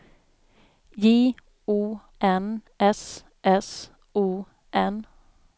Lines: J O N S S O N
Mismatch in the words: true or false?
false